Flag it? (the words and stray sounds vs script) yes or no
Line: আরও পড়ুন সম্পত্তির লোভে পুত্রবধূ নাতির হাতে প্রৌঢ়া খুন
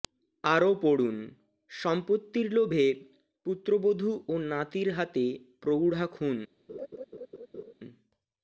yes